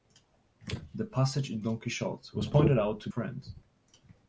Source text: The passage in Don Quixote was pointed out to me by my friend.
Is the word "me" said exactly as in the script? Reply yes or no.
no